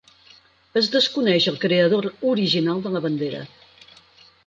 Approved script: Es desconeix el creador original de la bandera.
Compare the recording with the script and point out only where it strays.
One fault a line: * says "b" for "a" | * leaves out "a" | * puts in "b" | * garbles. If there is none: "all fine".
all fine